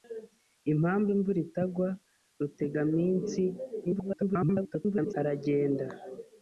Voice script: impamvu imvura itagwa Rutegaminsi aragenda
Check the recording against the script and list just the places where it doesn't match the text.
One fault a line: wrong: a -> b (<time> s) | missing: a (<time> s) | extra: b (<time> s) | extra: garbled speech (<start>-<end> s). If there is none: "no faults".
extra: garbled speech (3.8-5.1 s)